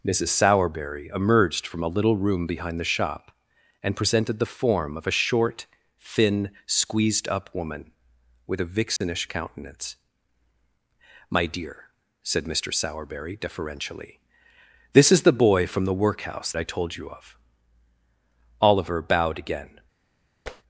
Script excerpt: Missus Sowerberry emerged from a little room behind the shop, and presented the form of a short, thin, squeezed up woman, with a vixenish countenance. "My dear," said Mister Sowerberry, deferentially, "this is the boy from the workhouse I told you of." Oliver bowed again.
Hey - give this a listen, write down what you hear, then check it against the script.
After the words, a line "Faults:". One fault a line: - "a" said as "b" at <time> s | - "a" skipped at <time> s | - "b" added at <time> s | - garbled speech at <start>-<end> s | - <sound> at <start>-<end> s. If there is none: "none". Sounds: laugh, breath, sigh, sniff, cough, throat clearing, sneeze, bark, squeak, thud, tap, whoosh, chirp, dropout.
Missus Sowerberry emerged from a little room behind the shop, and presented the form of a short, thin, squeezed up woman, with a vixenish countenance. "My dear," said Mister Sowerberry, deferentially, "this is the boy from the workhouse I told you of." Oliver bowed again.
Faults:
- dropout at 9.0-9.0 s
- tap at 20.5-20.6 s